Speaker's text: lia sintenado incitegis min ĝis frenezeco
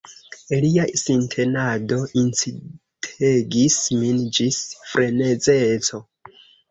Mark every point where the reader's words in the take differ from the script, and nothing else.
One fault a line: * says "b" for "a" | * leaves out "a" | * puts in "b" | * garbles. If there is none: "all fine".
all fine